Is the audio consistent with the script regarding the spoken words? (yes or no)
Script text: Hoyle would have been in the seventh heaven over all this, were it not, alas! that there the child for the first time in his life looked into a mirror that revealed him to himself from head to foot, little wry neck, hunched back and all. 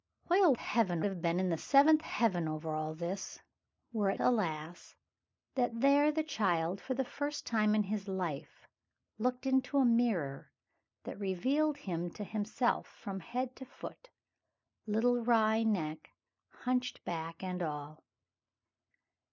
no